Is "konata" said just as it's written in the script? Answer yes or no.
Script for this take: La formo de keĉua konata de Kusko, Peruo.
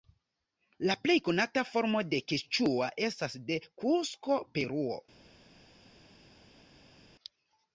no